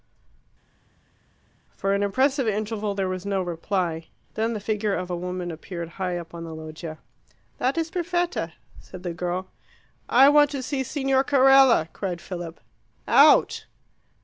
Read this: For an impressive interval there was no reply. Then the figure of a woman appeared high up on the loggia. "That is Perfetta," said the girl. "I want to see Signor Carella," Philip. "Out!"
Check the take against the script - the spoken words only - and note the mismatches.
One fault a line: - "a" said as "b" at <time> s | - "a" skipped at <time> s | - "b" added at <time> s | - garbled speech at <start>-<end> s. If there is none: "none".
- "cried" added at 11.9 s